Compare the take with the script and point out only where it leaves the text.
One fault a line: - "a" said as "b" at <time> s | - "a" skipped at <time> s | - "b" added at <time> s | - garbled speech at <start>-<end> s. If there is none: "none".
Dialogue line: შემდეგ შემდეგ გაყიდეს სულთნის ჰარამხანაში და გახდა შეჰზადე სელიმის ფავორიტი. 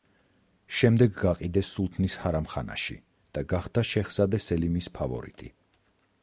- "შემდეგ" skipped at 1.1 s